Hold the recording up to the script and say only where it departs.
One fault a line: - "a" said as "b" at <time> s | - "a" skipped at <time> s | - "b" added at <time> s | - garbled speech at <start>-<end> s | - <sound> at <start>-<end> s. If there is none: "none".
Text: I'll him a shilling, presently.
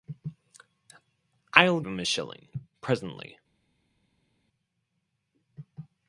none